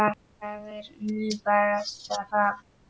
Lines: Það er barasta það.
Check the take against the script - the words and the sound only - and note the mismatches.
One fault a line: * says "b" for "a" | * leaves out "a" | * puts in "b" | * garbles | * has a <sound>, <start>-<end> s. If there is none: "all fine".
* puts in "nú"